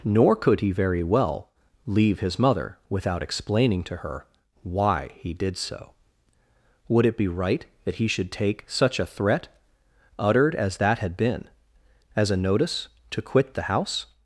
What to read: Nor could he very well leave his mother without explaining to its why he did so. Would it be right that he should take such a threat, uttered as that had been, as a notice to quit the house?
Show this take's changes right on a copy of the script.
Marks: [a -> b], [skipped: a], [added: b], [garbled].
Nor could he very well leave his mother without explaining to [its -> her] why he did so. Would it be right that he should take such a threat, uttered as that had been, as a notice to quit the house?